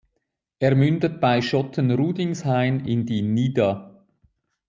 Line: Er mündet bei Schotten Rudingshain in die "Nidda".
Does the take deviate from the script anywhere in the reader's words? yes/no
no